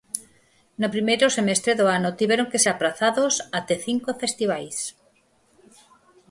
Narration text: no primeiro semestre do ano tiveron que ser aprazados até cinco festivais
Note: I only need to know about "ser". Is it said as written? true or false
false